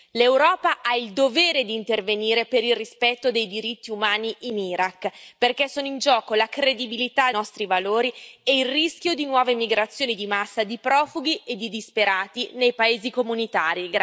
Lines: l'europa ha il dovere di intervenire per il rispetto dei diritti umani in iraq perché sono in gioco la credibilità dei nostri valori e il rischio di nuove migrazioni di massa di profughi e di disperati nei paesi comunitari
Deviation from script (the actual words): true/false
true